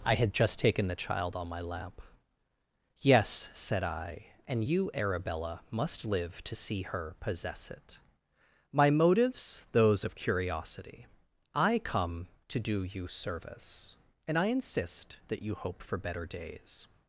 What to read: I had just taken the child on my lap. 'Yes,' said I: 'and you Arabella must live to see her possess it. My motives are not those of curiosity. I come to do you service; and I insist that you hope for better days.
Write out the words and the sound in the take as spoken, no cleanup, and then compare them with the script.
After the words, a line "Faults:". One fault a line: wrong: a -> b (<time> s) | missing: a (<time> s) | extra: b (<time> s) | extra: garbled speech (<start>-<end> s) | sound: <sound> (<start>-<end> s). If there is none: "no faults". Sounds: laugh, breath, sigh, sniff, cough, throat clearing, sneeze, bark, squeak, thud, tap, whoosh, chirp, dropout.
I had just taken the child on my lap. 'Yes,' said I: 'and you Arabella must live to see her possess it. My motives those of curiosity. I come to do you service; and I insist that you hope for better days.
Faults:
missing: are not (9.7 s)